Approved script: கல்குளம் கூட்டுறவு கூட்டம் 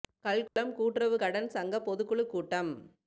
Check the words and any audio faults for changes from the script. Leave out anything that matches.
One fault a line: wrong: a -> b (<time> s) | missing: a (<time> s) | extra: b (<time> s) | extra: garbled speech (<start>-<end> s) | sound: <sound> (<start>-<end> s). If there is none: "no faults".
sound: dropout (0.5-0.6 s)
extra: கடன் சங்க பொதுக்குழு (1.1 s)